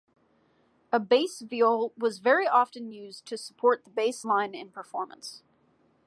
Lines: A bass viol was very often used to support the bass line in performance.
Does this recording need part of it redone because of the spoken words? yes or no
no